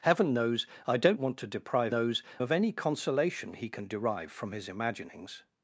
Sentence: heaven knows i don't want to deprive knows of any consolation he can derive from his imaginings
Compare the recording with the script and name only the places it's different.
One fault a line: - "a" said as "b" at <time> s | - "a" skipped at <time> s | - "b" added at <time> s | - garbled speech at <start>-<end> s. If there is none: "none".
none